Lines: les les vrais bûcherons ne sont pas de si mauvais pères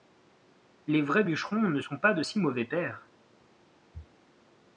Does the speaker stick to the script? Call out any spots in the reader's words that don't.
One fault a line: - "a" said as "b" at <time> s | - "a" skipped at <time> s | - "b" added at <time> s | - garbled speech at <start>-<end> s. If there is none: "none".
- "les" skipped at 1.0 s